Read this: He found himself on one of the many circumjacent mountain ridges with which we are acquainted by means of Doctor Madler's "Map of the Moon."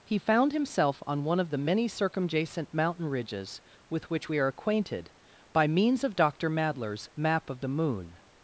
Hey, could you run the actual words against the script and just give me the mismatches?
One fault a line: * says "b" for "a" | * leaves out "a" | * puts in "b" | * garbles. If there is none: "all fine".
all fine